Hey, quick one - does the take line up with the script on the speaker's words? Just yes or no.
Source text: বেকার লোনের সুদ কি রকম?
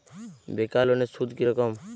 yes